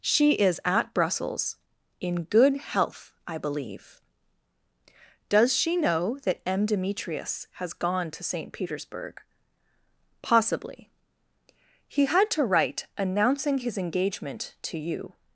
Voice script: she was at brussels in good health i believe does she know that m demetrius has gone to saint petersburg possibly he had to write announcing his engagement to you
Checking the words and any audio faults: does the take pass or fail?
fail